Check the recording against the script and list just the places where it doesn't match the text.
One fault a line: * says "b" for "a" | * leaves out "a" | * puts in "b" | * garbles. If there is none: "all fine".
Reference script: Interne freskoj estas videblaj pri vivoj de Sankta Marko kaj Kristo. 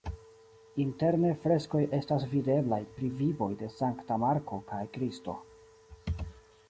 all fine